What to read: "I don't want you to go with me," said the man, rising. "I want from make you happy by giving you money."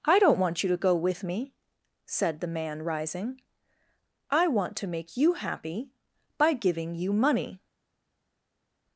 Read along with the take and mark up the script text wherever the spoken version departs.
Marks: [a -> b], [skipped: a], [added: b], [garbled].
"I don't want you to go with me," said the man, rising. "I want [from -> to] make you happy by giving you money."